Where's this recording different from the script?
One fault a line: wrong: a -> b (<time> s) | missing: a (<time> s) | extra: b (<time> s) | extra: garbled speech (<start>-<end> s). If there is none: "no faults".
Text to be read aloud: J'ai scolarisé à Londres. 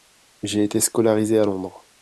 extra: été (0.6 s)